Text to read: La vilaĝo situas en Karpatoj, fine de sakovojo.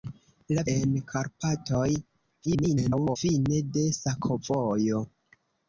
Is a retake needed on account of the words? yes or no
yes